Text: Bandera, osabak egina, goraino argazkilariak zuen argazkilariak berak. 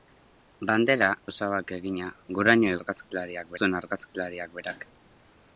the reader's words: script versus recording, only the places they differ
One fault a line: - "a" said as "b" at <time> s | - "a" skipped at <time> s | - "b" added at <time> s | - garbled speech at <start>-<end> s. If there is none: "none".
none